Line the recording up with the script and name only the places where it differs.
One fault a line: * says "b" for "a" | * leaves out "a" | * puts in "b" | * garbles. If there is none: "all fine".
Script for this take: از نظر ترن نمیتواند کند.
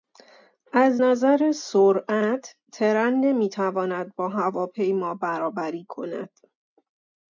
* puts in "سرعت"
* puts in "با هواپیما برابری"